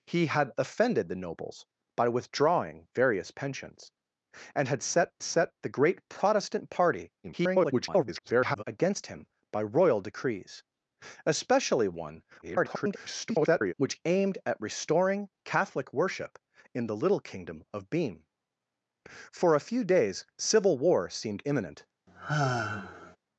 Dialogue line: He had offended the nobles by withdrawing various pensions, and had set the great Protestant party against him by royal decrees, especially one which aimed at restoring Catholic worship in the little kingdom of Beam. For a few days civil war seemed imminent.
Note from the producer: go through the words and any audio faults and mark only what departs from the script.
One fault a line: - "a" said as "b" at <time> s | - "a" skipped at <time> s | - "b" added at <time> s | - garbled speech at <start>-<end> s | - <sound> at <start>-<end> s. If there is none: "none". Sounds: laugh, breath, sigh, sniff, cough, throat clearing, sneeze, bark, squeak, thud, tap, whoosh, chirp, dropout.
- "set" added at 5.2 s
- garbled speech at 7.2-8.6 s
- garbled speech at 12.4-13.7 s
- sigh at 22.1-23.2 s